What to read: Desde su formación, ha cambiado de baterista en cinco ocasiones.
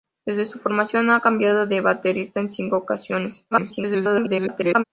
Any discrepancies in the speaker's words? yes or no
yes